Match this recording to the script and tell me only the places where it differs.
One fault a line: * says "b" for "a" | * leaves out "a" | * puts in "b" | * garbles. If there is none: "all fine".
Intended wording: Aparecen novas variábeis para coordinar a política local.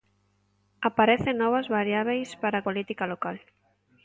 * leaves out "coordinar a"